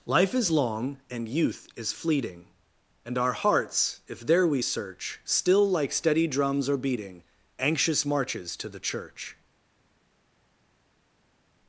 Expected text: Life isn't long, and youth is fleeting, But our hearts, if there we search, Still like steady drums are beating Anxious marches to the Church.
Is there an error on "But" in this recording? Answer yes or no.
yes